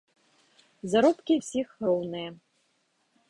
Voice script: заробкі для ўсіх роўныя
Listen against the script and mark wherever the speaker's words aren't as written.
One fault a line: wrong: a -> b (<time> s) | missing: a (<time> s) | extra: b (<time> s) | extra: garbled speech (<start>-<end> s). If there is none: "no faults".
missing: для (1.3 s)